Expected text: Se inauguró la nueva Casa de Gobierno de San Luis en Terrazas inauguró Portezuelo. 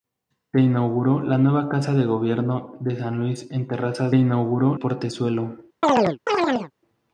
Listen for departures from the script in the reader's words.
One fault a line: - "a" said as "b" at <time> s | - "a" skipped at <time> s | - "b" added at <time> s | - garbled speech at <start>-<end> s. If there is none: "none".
none